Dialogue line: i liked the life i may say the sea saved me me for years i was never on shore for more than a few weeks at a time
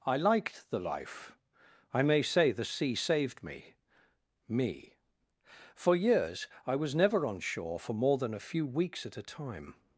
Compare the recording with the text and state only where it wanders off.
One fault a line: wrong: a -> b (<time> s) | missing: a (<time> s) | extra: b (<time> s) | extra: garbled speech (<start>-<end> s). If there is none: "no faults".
no faults